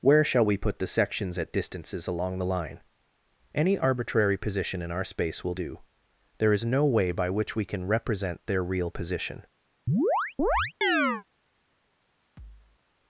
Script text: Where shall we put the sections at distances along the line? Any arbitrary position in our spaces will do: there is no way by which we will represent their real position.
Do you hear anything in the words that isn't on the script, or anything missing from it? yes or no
yes